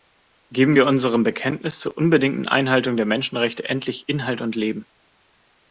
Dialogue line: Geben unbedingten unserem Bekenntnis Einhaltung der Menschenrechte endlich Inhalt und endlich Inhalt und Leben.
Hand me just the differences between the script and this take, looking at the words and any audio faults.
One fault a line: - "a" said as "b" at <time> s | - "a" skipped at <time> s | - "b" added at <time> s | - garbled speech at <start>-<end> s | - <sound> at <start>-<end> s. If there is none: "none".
- "unbedingten" said as "wir" at 0.7 s
- "zur unbedingten" added at 1.8 s
- "endlich Inhalt und" skipped at 4.5 s